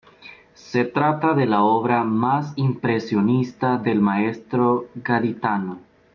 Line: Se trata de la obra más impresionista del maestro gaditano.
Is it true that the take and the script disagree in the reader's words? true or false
false